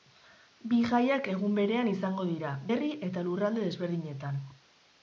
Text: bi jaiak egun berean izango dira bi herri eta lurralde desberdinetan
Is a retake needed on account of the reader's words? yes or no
yes